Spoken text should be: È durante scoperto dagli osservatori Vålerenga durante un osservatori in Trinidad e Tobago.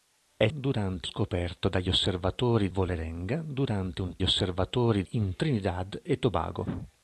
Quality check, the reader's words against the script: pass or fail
pass